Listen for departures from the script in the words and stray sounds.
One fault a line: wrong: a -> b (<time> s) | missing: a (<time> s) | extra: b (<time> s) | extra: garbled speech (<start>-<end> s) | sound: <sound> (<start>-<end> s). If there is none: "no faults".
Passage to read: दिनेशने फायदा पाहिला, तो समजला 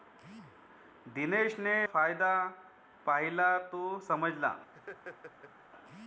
sound: laugh (4.7-5.5 s)